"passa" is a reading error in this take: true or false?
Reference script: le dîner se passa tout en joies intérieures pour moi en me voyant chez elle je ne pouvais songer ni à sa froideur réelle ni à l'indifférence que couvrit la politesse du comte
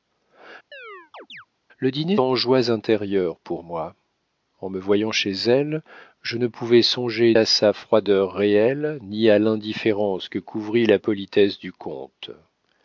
true